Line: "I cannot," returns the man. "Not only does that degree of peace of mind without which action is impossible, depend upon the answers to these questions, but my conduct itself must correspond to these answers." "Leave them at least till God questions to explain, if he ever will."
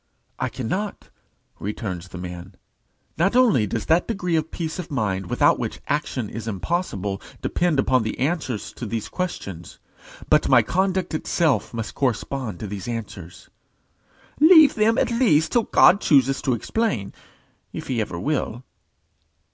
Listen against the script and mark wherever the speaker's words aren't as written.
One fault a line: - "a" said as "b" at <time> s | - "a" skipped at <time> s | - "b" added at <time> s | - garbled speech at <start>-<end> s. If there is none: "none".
- "questions" said as "chooses" at 16.0 s